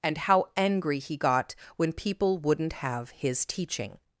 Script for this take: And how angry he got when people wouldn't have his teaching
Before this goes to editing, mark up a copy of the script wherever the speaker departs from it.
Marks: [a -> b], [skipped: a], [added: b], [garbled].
And how angry he got when people wouldn't have his teaching